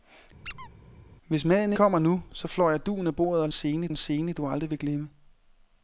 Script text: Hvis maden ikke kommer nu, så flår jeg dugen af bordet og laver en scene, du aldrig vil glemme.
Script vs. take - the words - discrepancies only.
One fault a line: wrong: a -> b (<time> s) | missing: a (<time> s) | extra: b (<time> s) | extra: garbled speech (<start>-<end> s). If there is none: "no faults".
missing: ikke (1.7 s)
wrong: laver -> scene (3.5 s)